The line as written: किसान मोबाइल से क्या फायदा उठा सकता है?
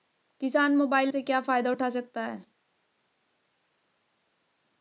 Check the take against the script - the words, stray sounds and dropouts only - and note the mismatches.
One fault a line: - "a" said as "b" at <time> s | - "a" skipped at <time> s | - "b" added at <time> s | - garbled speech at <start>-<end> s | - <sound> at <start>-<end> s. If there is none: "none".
none